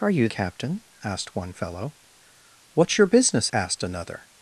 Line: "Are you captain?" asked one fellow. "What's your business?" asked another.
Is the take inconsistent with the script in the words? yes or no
no